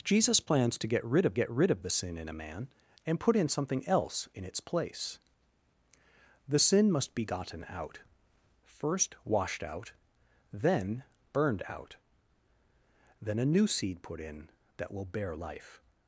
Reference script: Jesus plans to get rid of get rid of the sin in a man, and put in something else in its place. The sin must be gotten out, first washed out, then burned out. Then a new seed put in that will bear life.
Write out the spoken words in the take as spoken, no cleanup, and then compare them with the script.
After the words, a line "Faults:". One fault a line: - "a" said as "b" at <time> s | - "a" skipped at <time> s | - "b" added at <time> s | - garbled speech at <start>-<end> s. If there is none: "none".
Jesus plans to get rid of get rid of the sin in a man, and put in something else in its place. The sin must be gotten out, first washed out, then burned out. Then a new seed put in that will bear life.
Faults:
none